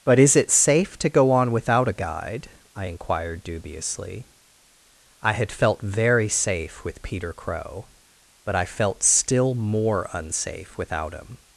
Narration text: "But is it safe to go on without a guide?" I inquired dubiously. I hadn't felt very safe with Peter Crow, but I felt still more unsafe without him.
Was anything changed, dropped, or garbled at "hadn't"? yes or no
yes